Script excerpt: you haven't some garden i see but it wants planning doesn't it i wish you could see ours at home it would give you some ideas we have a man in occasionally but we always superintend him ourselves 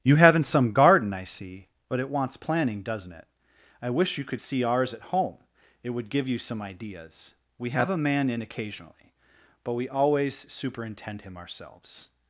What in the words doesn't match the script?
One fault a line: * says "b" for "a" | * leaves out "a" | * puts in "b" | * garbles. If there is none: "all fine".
all fine